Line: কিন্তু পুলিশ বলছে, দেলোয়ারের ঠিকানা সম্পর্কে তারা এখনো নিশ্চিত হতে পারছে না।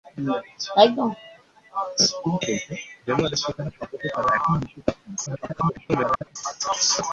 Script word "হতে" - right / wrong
wrong